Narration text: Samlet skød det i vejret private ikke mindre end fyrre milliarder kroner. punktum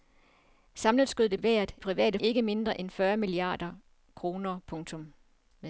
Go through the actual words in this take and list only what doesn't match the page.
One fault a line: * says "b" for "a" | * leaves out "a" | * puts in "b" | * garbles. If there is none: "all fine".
all fine